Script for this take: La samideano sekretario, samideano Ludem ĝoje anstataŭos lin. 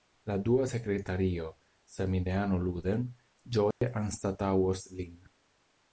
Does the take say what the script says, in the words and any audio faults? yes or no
no